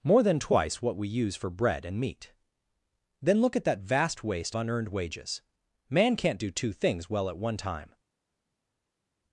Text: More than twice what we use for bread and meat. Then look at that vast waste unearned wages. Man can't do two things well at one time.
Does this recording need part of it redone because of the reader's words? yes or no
no